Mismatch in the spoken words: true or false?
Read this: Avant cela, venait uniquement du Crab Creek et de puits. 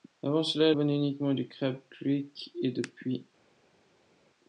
false